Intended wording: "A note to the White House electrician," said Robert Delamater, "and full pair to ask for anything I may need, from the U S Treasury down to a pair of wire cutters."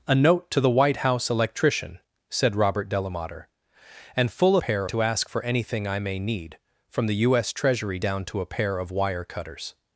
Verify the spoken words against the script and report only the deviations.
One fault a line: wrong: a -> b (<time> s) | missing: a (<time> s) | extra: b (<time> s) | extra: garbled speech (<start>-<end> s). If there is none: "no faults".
no faults